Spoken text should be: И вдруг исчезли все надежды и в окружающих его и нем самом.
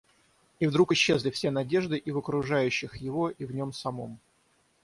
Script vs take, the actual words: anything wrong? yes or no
yes